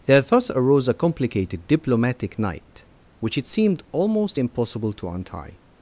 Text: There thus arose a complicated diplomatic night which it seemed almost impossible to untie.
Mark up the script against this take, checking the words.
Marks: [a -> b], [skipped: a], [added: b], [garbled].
There thus arose a complicated diplomatic night which it seemed almost impossible to untie.